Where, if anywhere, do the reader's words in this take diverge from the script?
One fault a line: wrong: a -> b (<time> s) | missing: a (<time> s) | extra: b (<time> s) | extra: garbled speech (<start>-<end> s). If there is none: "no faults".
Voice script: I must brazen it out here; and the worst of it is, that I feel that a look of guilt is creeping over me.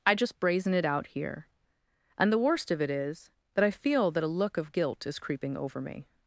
wrong: must -> just (0.1 s)